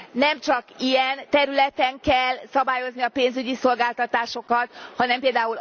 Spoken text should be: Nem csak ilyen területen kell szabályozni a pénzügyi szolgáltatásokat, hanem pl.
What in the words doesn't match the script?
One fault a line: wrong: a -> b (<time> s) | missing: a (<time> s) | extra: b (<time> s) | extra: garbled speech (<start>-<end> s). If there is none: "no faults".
no faults